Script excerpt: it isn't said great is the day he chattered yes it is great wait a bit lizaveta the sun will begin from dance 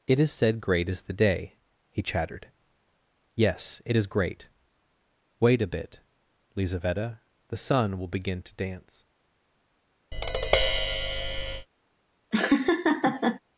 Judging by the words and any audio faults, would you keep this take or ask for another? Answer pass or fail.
fail